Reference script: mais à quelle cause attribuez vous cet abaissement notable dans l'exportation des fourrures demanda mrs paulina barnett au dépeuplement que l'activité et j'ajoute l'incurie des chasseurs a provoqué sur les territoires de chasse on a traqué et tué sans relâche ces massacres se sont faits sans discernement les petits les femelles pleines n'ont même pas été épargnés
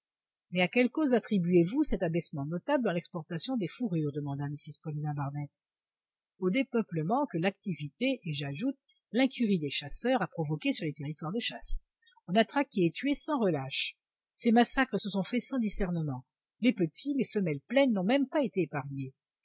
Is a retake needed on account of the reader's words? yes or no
no